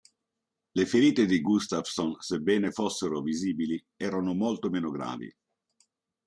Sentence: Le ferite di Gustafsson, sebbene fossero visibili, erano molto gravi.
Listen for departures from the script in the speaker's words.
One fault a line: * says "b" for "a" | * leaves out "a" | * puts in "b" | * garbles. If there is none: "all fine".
* puts in "meno"